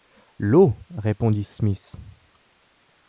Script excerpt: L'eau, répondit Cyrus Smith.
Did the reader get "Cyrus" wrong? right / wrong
wrong